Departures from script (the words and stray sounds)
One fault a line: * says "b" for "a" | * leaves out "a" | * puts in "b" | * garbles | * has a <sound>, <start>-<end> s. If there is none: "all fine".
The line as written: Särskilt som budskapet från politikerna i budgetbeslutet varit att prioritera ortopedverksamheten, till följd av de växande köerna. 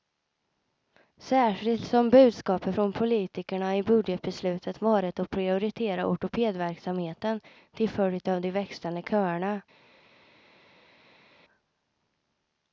all fine